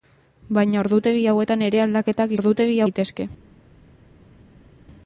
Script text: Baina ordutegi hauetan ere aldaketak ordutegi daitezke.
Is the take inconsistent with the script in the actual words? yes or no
no